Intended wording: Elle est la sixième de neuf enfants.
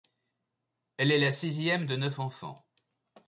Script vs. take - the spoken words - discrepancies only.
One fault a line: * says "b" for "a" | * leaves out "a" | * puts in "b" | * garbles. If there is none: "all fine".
all fine